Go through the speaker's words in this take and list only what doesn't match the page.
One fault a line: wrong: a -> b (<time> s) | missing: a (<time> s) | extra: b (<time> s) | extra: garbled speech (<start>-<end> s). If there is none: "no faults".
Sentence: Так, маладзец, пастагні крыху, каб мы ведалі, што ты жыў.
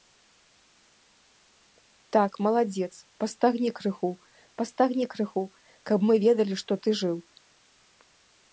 extra: пастагні крыху (4.6 s)